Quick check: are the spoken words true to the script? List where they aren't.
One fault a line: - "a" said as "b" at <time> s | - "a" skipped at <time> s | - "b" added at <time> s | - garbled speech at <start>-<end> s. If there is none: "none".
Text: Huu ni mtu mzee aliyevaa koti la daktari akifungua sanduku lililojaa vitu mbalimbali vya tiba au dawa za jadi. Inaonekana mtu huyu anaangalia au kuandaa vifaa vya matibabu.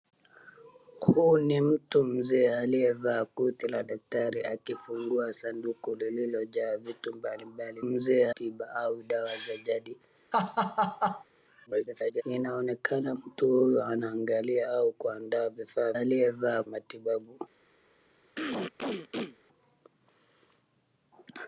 - "vya" said as "mzee" at 7.8 s
- garbled speech at 11.7-12.2 s
- "vya" said as "aliyevaa" at 15.9 s